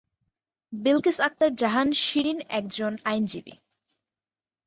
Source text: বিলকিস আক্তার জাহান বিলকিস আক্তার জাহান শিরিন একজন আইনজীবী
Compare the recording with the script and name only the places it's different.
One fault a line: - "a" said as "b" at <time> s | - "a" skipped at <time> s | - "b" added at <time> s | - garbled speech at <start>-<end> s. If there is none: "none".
- "বিলকিস আক্তার জাহান" skipped at 1.9 s